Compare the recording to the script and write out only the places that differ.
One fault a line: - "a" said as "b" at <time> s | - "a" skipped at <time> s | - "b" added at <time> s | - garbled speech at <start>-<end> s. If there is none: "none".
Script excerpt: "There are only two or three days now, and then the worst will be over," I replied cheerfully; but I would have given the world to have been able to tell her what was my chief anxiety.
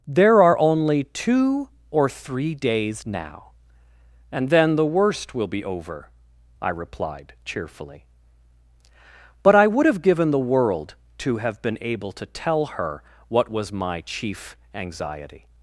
none